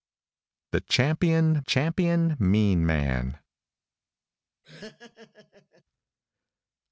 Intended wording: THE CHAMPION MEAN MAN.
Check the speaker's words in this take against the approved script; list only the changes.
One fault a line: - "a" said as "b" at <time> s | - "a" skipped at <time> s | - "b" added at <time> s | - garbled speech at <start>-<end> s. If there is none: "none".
- "CHAMPION" added at 1.6 s